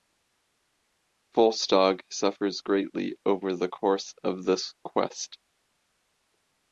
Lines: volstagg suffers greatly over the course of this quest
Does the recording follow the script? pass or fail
pass